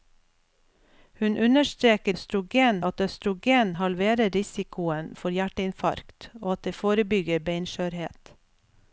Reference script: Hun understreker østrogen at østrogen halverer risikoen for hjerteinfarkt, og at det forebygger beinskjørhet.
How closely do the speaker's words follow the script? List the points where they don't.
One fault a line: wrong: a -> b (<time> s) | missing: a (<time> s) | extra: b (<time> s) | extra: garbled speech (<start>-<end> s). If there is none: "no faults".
no faults